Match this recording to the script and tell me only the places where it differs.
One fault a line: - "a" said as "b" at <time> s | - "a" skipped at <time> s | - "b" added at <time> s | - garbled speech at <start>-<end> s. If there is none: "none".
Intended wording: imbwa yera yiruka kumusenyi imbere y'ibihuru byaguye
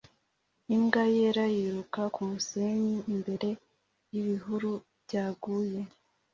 none